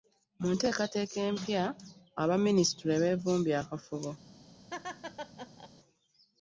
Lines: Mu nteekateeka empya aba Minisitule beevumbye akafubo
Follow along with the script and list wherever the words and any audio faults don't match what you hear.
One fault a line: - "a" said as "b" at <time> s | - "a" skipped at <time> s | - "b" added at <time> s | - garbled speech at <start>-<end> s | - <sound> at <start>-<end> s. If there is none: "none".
- laugh at 4.7-5.7 s